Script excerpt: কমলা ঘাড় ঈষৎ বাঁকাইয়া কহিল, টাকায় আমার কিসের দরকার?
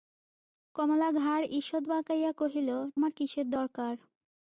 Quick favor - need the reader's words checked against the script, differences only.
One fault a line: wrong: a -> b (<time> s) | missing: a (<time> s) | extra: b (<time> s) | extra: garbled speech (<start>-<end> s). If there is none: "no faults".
missing: টাকায় (2.7 s)